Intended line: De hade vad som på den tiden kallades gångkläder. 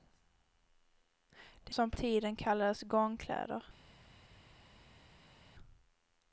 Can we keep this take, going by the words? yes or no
no